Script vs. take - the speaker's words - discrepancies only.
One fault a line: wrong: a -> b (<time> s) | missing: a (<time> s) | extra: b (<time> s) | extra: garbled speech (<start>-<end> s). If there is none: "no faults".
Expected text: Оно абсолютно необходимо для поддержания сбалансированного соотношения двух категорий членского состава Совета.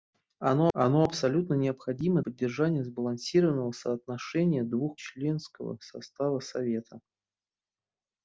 extra: оно (0.7 s)
missing: для (2.2 s)
missing: категорий (5.0 s)